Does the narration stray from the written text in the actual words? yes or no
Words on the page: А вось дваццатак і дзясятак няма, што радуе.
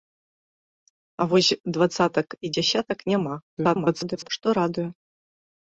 yes